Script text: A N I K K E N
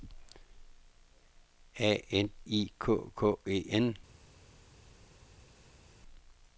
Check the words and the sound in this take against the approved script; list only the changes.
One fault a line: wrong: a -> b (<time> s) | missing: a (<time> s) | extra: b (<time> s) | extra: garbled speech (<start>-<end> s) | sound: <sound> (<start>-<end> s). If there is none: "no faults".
no faults